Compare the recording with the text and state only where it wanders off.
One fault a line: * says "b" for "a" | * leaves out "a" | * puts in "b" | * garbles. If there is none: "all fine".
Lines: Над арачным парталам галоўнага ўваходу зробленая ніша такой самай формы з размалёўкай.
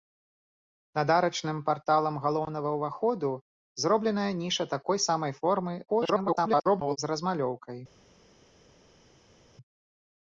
* garbles